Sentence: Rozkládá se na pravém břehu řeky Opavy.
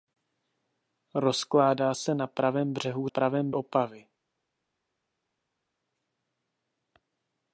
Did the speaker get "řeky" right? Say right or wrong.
wrong